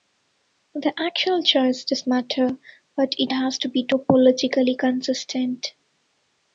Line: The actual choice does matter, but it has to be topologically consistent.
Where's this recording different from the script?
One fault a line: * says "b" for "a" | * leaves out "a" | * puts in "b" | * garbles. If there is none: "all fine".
all fine